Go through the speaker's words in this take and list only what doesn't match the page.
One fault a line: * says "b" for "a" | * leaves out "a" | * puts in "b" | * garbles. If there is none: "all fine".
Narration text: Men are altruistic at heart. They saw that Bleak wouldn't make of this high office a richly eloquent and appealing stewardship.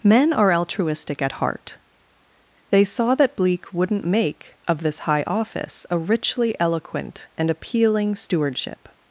all fine